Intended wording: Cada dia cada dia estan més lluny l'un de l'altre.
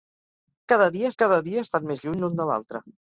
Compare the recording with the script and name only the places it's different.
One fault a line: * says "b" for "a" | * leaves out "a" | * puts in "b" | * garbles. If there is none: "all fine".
all fine